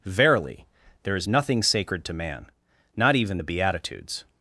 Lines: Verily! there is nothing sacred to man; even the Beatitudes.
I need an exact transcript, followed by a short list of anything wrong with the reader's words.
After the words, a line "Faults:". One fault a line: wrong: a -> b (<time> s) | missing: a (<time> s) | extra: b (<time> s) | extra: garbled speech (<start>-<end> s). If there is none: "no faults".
Verily! there is nothing sacred to man; not even the Beatitudes.
Faults:
extra: not (3.0 s)